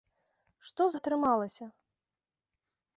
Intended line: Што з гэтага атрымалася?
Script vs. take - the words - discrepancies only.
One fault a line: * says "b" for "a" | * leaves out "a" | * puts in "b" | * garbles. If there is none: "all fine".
* leaves out "гэтага"